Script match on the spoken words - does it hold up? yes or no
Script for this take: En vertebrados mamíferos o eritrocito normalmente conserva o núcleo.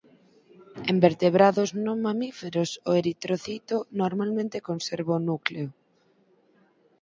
no